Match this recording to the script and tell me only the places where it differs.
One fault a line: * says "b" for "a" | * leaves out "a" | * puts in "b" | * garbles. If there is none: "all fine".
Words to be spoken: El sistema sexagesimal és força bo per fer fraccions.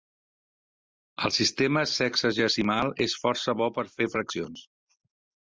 all fine